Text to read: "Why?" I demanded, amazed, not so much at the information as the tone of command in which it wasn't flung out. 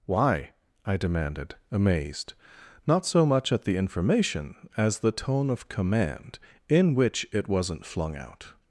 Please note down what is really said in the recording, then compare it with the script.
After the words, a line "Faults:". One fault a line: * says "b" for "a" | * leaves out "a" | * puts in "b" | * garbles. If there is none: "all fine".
"Why?" I demanded, amazed, not so much at the information as the tone of command in which it wasn't flung out.
Faults:
all fine